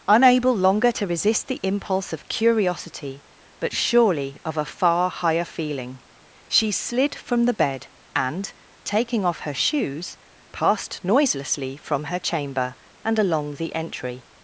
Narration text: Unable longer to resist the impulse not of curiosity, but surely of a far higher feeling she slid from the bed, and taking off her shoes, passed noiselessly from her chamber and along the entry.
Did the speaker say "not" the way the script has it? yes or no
no